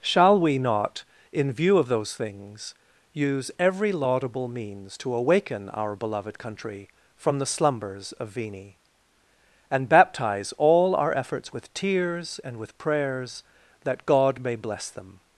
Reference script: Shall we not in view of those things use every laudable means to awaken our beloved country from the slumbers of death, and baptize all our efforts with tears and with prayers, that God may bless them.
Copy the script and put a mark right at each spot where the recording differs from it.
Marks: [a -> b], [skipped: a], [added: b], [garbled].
Shall we not in view of those things use every laudable means to awaken our beloved country from the slumbers of [death, -> vini] and baptize all our efforts with tears and with prayers, that God may bless them.